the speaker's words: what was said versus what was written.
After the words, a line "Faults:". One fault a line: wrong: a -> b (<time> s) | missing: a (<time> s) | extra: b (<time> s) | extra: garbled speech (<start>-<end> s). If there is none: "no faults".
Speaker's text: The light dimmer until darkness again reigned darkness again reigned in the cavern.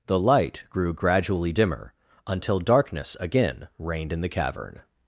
The light grew gradually dimmer until darkness again reigned in the cavern.
Faults:
extra: grew gradually (0.7 s)
missing: darkness again reigned (4.1 s)